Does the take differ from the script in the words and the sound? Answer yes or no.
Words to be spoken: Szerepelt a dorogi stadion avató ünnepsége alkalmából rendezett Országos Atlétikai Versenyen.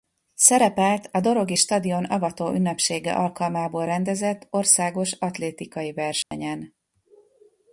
yes